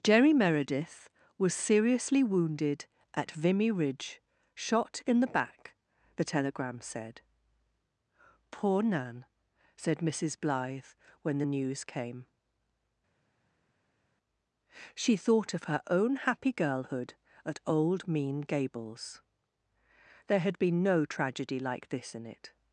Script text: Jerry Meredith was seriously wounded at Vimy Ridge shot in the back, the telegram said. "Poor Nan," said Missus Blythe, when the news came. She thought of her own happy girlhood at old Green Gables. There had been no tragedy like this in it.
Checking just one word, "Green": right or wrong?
wrong